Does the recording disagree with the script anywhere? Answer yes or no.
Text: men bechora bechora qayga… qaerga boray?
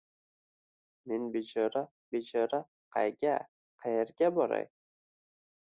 no